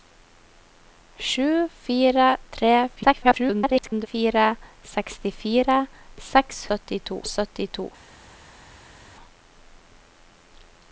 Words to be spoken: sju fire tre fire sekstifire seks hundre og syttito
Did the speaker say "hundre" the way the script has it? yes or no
no